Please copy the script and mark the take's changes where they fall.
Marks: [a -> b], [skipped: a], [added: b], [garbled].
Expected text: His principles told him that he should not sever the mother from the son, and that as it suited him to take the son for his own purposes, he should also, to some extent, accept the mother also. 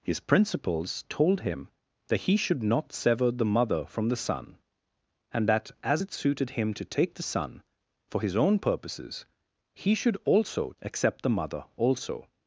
His principles told him that he should not sever the mother from the son, and that as it suited him to take the son for his own purposes, he should also, [skipped: to some extent,] accept the mother also.